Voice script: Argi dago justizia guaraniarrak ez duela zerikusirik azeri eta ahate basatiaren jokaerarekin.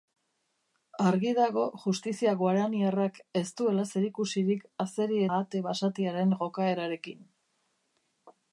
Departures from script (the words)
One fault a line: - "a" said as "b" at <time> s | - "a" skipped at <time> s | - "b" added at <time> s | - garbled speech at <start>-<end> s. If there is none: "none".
- "eta" skipped at 5.2 s